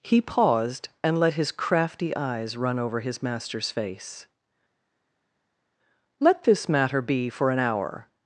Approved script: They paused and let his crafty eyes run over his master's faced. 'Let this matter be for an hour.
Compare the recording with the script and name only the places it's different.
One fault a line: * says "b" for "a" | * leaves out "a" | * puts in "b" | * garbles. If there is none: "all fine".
* says "He" for "They"
* says "face" for "faced"